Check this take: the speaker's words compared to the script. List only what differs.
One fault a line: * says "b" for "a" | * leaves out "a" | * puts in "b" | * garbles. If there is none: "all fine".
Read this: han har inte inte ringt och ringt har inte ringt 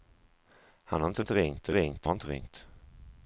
all fine